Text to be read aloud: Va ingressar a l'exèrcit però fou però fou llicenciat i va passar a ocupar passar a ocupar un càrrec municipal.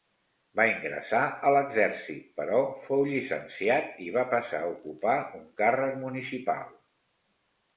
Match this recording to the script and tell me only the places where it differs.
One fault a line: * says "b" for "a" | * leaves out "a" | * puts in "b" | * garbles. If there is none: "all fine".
* leaves out "però fou"
* leaves out "passar a ocupar"